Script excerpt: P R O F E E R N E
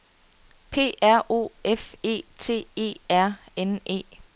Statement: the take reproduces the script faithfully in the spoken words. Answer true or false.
false